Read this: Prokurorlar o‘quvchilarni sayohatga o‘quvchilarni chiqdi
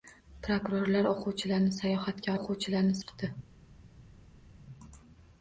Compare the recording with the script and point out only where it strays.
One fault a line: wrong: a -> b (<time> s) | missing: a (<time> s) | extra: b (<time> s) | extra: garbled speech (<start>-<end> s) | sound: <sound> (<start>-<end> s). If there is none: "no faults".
no faults